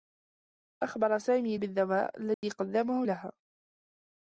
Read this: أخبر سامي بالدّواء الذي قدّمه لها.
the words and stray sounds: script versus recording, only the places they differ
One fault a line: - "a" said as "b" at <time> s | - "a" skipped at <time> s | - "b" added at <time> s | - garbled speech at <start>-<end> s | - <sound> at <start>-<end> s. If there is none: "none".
- dropout at 2.3-2.4 s